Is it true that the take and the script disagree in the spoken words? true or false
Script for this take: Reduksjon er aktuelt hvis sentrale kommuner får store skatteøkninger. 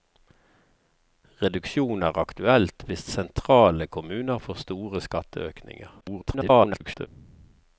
true